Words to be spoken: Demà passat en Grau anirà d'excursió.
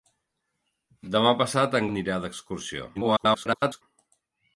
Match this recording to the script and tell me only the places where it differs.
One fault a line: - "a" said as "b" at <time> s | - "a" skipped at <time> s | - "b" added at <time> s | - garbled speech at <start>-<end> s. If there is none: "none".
- "Grau" skipped at 1.9 s
- garbled speech at 2.9-3.8 s